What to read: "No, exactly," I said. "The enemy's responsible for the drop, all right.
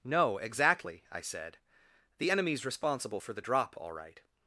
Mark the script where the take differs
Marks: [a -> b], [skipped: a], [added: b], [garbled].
"No, exactly," I said. "The enemy's responsible for the drop, all right.